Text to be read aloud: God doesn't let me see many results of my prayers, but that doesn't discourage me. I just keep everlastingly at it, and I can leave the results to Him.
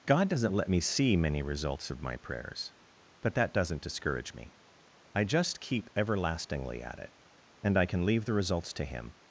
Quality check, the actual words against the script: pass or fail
pass